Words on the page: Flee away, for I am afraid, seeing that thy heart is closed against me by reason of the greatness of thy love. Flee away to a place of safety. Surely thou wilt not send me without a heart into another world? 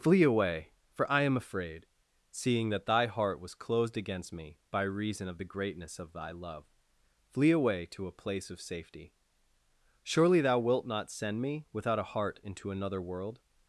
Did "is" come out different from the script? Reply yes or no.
yes